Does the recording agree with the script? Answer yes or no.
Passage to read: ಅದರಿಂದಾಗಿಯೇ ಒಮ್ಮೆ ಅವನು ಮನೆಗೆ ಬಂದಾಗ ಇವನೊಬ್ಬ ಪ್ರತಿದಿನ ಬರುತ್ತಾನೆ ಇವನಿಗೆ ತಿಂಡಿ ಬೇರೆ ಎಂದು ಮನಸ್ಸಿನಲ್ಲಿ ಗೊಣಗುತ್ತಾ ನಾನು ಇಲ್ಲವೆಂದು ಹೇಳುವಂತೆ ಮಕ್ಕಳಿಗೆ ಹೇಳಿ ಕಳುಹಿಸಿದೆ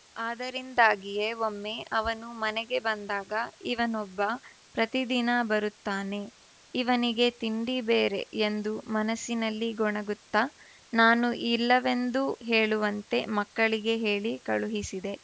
yes